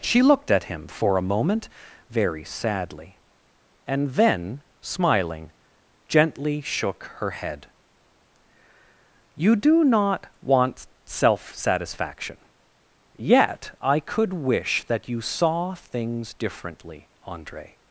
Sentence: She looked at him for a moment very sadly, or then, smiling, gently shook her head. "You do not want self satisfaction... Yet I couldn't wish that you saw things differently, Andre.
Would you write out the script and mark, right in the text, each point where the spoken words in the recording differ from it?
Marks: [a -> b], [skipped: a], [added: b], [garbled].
She looked at him for a moment very sadly, [or -> and] then, smiling, gently shook her head. "You do not want self satisfaction... Yet I [couldn't -> could] wish that you saw things differently, Andre.